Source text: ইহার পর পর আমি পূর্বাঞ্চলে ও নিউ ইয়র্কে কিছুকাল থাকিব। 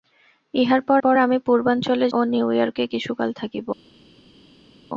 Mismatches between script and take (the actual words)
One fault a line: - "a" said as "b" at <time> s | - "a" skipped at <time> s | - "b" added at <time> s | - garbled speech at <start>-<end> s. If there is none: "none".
none